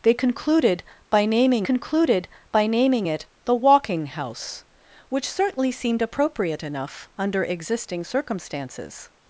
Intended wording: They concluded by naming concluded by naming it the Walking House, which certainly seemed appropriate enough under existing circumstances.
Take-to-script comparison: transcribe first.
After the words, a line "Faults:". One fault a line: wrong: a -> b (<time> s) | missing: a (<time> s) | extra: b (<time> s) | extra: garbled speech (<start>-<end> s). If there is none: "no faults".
They concluded by naming concluded by naming it the Walking House, which certainly seemed appropriate enough under existing circumstances.
Faults:
no faults